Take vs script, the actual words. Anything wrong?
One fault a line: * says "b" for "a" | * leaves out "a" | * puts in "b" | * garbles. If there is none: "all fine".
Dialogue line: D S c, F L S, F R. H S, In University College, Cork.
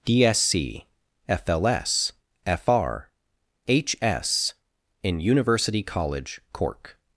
all fine